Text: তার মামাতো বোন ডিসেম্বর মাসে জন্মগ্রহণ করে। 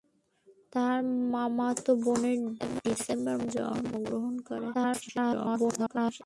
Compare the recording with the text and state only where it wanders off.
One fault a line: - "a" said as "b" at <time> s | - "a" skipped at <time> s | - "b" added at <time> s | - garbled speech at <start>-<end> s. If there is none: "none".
- "মাসে" skipped at 3.3 s
- garbled speech at 4.7-6.2 s